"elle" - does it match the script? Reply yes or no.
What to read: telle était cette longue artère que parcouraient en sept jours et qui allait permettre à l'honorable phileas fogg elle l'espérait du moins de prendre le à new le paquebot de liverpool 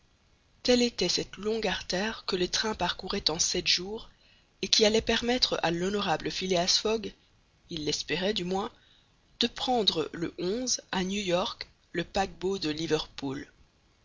no